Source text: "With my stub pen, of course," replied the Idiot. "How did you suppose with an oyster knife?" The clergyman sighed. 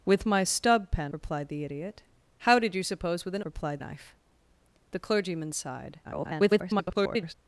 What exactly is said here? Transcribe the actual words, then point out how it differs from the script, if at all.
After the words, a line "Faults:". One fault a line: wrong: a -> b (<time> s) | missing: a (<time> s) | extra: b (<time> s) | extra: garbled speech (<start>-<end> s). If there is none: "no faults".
"With my stub pen," replied the Idiot. "How did you suppose with an replied knife?" The clergyman sighed. [garbled]
Faults:
missing: of course (1.1 s)
wrong: oyster -> replied (3.4 s)
extra: garbled speech (6.0-7.3 s)